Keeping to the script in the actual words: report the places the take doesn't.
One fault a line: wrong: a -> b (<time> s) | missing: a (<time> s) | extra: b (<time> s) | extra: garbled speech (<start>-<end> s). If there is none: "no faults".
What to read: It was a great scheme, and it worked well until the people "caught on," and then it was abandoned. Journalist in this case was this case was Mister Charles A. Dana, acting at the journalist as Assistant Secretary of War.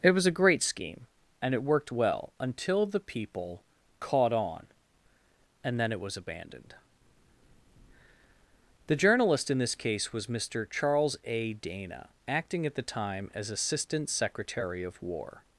extra: The (8.9 s)
missing: this case was (10.3 s)
wrong: journalist -> time (12.8 s)